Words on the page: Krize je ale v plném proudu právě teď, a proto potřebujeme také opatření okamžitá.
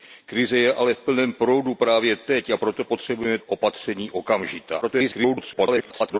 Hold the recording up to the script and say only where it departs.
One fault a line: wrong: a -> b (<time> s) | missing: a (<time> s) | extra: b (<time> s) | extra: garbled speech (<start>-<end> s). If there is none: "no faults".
missing: také (3.4 s)
extra: garbled speech (4.8-6.2 s)